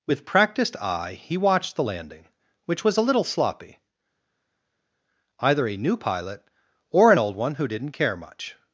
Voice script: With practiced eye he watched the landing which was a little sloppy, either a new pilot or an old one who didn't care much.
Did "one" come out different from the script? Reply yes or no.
no